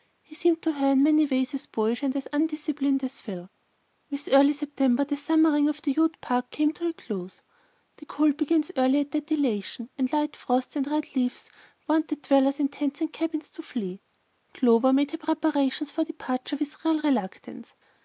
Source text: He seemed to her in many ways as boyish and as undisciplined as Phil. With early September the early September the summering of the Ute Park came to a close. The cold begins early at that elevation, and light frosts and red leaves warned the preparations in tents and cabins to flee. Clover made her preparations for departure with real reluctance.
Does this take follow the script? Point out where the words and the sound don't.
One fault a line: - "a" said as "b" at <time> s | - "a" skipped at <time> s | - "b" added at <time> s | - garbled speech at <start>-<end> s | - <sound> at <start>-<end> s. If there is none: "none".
- "early September the" skipped at 5.2 s
- "preparations" said as "dwellers" at 12.2 s